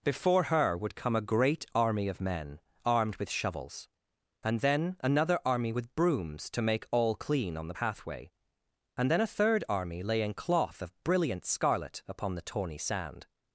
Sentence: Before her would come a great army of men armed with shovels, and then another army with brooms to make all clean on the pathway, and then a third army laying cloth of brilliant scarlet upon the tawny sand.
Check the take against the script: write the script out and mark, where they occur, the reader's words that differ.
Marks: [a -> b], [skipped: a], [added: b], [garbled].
Before her would come a great army of men armed with shovels, and then another army with brooms to make all clean on the pathway, and then a third army laying cloth of brilliant scarlet upon the tawny sand.